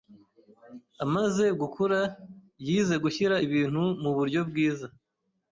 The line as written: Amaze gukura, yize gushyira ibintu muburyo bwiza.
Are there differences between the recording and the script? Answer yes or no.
no